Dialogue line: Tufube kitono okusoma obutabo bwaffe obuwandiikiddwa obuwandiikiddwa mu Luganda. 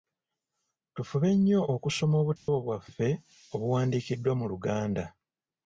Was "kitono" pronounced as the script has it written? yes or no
no